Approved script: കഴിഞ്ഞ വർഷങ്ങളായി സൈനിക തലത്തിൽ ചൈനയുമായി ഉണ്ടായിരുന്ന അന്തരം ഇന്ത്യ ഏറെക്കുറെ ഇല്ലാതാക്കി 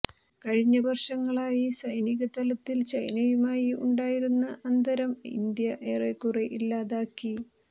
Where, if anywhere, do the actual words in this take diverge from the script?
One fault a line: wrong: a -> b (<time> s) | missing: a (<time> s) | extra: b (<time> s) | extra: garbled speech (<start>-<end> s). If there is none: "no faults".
no faults